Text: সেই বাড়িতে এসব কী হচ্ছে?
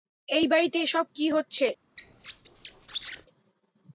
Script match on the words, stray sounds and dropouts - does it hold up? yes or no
no